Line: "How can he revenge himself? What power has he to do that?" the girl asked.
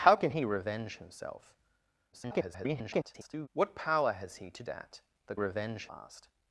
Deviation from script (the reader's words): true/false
true